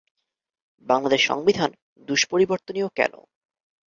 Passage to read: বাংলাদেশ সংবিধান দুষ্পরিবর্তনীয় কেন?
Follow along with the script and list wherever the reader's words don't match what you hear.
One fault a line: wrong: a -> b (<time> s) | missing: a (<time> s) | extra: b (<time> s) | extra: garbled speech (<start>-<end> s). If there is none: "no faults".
no faults